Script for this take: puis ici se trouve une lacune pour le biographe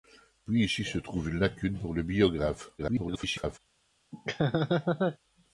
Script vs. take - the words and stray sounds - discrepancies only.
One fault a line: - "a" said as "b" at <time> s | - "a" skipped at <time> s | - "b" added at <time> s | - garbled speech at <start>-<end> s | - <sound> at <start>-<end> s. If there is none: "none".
- garbled speech at 2.8-3.6 s
- laugh at 4.1-5.2 s